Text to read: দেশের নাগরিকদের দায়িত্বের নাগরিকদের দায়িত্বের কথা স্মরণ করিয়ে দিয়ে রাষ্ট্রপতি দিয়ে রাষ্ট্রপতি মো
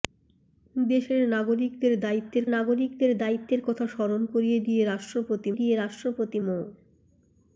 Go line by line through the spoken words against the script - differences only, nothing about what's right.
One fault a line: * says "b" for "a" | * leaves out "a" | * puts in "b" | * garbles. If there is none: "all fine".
all fine